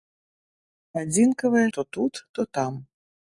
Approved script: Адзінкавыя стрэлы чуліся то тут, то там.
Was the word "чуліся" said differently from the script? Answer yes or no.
yes